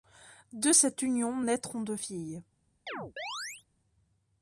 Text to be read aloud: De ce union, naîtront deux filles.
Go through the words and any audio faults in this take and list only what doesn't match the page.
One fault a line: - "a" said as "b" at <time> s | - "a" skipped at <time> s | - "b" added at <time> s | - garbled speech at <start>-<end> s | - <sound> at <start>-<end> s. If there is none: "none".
- "ce" said as "cette" at 0.7 s
- chirp at 2.9-3.6 s